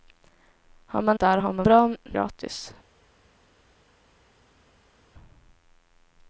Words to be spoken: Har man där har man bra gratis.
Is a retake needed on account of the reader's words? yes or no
no